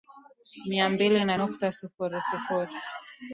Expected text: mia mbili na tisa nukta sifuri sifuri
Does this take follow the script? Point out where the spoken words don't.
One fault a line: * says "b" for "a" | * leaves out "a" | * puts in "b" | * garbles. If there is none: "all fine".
* leaves out "tisa"